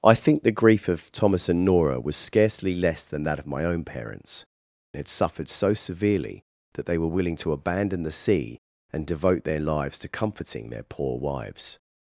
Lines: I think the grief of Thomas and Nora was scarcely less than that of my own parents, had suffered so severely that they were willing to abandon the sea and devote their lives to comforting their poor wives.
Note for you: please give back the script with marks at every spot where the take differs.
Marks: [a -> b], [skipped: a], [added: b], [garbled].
I think the grief of Thomas and Nora was scarcely less than that of my own parents, had suffered so severely that they were willing to abandon the sea and devote their lives to comforting their poor wives.